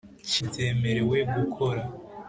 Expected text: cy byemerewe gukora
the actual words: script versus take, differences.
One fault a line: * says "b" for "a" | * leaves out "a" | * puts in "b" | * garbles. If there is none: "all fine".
all fine